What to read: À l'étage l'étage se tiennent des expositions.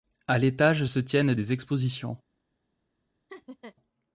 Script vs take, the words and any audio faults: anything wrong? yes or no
yes